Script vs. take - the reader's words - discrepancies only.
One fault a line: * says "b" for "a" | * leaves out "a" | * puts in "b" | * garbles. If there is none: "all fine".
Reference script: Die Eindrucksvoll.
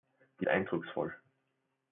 all fine